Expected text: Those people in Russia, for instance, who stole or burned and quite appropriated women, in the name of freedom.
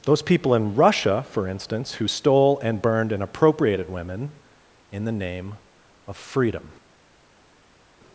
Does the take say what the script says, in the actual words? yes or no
no